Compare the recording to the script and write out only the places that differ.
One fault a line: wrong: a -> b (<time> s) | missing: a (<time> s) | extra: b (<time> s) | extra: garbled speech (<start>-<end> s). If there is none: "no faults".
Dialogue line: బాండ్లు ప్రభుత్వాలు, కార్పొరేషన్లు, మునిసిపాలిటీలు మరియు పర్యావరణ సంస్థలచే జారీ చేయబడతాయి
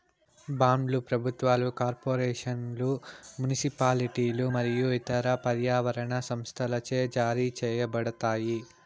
extra: ఇతర (5.0 s)